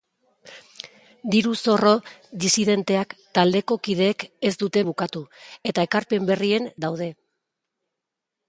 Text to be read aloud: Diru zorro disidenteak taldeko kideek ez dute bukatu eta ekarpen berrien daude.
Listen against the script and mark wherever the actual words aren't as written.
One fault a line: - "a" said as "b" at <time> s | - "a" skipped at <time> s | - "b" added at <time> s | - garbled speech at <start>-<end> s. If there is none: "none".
none